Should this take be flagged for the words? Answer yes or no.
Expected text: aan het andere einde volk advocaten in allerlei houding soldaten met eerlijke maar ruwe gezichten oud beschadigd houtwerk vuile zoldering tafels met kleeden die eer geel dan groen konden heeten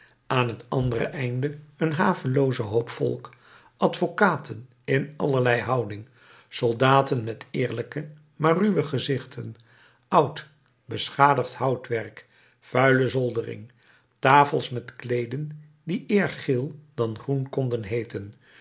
yes